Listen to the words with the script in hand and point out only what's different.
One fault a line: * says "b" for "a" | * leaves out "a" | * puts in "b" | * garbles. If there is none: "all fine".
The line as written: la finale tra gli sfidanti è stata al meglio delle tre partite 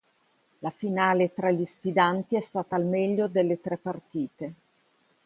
all fine